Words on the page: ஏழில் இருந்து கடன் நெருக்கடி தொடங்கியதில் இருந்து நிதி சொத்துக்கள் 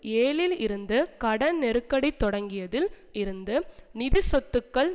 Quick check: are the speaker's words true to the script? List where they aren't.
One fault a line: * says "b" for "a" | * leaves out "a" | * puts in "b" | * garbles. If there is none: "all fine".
all fine